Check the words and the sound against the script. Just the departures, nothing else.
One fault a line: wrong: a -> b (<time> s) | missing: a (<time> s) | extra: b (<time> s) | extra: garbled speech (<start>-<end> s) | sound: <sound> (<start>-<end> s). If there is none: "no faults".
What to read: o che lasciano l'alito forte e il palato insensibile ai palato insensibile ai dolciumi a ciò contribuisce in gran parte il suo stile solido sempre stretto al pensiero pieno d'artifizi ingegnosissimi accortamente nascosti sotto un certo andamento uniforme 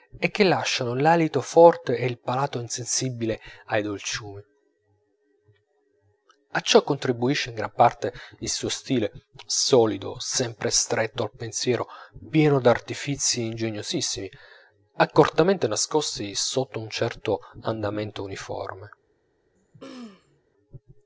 wrong: o -> e (0.2 s)
missing: palato insensibile ai (3.8 s)
sound: throat clearing (19.6-20.4 s)